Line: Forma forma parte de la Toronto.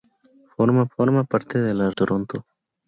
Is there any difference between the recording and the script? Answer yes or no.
no